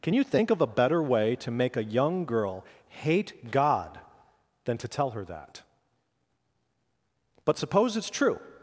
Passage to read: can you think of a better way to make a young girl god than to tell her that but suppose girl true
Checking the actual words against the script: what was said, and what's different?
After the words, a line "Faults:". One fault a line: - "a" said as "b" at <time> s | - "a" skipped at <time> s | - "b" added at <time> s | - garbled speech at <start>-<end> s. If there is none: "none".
can you think of a better way to make a young girl hate god than to tell her that but suppose it's true
Faults:
- "hate" added at 2.9 s
- "girl" said as "it's" at 8.0 s